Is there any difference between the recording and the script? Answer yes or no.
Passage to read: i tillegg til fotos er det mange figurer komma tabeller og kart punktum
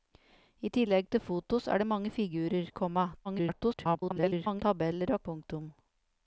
yes